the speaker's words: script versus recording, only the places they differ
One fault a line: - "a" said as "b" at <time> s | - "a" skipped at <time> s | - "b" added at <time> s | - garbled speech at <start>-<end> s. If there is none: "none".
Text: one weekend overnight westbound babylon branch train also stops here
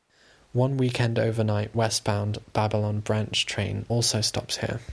none